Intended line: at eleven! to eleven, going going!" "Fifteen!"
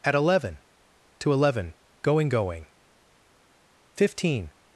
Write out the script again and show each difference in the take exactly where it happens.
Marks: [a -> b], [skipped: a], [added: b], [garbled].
at eleven! to eleven, going going!" "Fifteen!"